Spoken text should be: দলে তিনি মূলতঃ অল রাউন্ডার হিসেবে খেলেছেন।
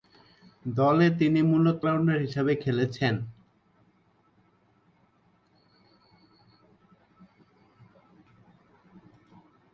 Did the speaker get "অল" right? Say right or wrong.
wrong